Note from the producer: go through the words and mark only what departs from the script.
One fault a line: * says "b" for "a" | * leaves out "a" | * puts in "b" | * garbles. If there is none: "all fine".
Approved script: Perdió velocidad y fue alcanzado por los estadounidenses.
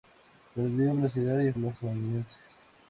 * leaves out "fue alcanzado por"